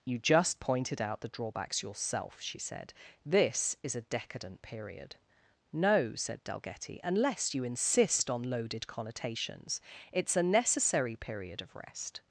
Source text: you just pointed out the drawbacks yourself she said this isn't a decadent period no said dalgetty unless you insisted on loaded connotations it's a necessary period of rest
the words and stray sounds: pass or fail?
fail